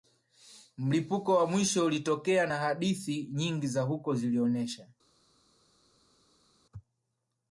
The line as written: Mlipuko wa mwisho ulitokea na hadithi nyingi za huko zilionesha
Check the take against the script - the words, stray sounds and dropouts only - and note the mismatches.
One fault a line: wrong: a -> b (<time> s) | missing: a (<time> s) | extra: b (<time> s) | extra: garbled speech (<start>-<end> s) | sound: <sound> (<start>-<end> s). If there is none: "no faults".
no faults